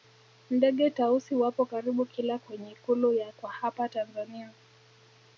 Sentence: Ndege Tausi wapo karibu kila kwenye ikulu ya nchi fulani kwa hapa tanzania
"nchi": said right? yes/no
no